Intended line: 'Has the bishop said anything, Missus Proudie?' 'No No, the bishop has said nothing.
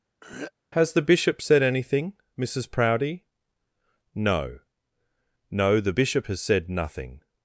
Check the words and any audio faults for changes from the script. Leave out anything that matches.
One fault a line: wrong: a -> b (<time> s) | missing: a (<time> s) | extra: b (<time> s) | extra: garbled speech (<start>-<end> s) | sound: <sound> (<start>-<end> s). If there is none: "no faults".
sound: throat clearing (0.2-0.5 s)